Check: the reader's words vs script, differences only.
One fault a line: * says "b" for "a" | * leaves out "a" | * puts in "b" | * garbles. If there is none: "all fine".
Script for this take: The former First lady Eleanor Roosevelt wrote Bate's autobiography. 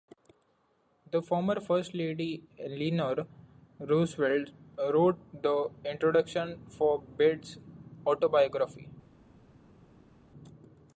* puts in "the introduction for"